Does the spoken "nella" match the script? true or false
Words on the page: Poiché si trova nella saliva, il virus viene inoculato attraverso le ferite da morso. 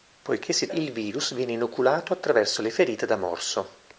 false